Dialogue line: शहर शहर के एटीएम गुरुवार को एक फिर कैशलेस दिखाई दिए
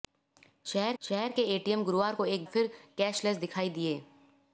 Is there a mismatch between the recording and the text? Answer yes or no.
no